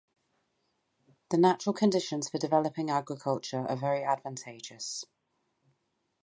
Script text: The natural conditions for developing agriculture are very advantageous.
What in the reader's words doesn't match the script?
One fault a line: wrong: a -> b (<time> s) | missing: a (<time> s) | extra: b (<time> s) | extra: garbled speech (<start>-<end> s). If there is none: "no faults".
no faults